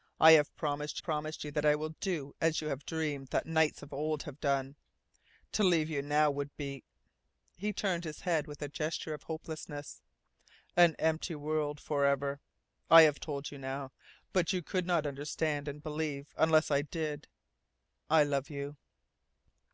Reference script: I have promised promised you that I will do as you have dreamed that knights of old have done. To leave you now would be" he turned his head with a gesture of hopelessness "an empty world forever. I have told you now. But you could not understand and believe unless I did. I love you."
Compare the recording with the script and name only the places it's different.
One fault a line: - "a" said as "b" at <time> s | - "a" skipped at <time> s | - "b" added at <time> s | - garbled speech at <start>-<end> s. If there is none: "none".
none